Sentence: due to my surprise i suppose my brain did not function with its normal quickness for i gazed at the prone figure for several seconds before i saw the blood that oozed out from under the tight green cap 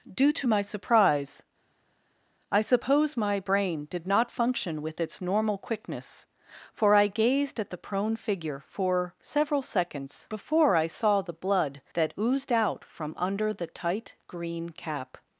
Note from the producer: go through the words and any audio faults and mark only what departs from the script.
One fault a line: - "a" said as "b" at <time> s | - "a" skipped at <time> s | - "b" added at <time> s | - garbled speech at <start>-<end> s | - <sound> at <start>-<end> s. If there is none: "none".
none